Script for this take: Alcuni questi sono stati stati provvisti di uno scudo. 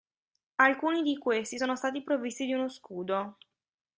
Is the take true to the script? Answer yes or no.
no